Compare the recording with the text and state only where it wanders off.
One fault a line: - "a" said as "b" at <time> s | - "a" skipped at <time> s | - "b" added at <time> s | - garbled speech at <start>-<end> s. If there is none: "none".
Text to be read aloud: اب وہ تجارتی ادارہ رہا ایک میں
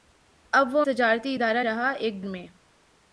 none